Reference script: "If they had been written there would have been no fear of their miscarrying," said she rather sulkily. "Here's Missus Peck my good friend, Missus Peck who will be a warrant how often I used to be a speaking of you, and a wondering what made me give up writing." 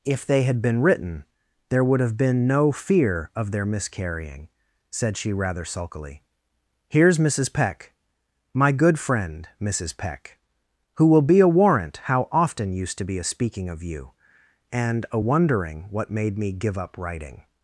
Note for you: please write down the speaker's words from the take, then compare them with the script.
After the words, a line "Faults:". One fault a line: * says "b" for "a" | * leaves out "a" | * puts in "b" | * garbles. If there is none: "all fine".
"If they had been written there would have been no fear of their miscarrying," said she rather sulkily. "Here's Missus Peck my good friend, Missus Peck who will be a warrant how often used to be a speaking of you, and a wondering what made me give up writing."
Faults:
* leaves out "I"